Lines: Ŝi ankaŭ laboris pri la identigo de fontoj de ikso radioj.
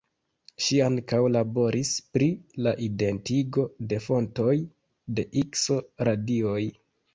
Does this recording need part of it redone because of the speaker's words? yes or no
no